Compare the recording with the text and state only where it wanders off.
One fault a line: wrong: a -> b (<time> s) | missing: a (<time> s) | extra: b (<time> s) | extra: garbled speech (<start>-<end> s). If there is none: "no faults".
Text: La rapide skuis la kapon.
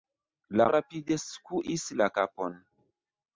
no faults